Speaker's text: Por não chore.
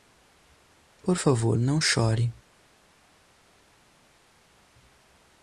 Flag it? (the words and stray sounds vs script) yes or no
yes